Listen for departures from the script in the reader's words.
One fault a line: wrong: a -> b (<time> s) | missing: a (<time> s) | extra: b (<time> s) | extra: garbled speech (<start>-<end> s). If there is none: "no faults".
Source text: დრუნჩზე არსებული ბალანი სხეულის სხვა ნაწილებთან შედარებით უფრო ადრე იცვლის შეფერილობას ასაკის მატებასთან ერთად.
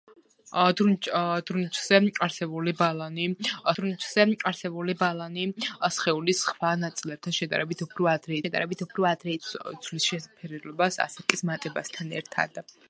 extra: დრუნჩზე არსებული ბალანი (3.8 s)
extra: შედარებით უფრო ადრე (8.4 s)